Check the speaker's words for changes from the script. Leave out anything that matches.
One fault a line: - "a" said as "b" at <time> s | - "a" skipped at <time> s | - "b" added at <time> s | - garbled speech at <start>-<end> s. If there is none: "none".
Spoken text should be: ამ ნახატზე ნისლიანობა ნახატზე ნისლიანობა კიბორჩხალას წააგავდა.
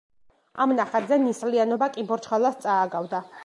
- "ნახატზე ნისლიანობა" skipped at 1.9 s